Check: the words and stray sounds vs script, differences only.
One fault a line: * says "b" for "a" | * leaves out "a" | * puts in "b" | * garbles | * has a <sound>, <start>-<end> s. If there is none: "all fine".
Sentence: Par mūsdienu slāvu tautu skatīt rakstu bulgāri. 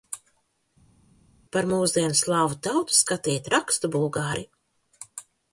all fine